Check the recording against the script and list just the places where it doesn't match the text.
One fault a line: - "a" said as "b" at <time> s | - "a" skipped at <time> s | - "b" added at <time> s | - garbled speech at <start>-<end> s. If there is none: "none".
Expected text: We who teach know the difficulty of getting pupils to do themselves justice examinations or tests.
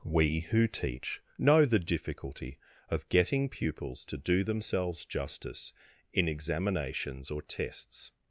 - "in" added at 6.1 s